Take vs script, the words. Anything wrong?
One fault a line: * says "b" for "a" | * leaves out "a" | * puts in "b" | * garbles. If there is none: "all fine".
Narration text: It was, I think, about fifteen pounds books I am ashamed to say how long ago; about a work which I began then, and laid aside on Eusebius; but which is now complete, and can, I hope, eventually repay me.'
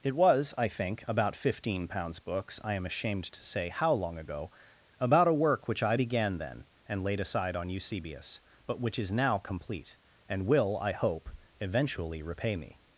* says "will" for "can"